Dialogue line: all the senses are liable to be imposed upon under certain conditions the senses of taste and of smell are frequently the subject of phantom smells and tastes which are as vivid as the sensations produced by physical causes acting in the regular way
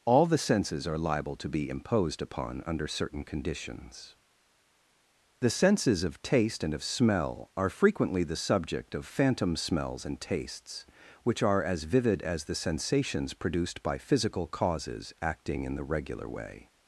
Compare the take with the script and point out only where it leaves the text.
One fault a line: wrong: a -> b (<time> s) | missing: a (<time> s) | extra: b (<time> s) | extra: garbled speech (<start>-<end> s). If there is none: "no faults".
no faults